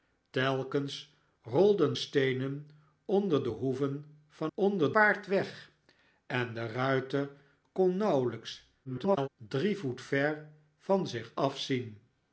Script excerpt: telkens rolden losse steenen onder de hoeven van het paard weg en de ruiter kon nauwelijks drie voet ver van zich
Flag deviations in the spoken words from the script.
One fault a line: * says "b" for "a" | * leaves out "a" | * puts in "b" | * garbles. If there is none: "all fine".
* leaves out "losse"
* says "onder" for "het"
* garbles